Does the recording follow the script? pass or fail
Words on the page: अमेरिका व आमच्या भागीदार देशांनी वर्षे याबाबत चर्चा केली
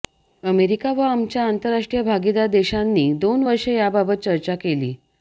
fail